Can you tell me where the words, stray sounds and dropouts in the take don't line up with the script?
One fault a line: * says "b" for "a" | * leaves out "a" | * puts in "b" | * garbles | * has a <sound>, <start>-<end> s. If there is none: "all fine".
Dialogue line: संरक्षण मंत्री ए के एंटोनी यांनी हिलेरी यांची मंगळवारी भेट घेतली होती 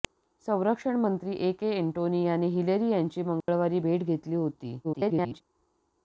* has a dropout, 3.4-3.5 s
* garbles